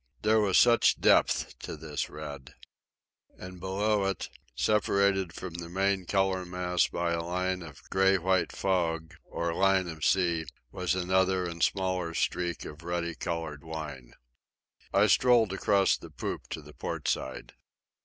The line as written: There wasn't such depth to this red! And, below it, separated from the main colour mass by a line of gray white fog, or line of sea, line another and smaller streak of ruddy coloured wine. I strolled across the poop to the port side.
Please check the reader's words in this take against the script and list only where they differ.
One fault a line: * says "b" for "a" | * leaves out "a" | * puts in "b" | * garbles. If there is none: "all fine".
* says "was" for "wasn't"
* says "was" for "line"